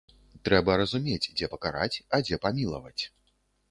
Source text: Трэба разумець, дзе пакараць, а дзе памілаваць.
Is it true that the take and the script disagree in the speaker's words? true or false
false